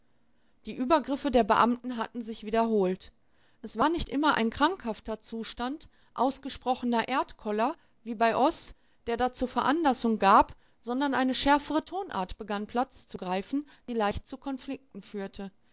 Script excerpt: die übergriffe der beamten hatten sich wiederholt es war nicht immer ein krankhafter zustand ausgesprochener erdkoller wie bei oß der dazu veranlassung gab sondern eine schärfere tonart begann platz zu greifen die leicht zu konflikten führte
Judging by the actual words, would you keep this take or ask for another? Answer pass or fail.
pass